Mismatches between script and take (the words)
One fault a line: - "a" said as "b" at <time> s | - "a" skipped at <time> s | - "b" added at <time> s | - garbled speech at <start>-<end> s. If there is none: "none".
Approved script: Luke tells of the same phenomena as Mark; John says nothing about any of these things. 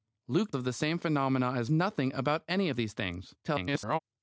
- "tells" skipped at 0.5 s
- "Mark John says" skipped at 1.7 s
- garbled speech at 3.4-4.0 s